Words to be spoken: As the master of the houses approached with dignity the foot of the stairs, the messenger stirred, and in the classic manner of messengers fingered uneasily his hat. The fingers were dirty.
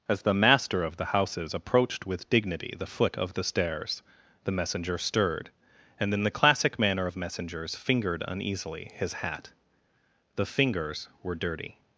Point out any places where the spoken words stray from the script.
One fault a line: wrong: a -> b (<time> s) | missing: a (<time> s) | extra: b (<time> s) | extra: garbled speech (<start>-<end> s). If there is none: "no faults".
no faults